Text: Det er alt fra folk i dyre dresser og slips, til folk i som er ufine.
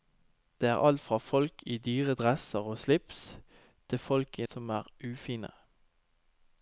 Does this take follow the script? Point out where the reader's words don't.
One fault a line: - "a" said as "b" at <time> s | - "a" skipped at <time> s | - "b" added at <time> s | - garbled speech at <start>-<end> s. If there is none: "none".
none